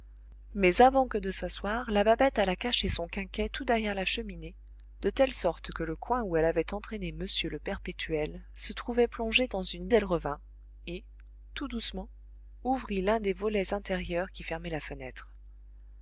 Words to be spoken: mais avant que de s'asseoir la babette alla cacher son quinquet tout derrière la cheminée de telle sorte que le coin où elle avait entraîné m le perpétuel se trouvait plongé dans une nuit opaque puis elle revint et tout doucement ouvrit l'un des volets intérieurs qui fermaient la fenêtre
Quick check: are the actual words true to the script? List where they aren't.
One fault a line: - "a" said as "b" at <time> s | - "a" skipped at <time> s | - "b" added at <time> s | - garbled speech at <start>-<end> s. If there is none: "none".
- "nuit opaque puis" skipped at 9.9 s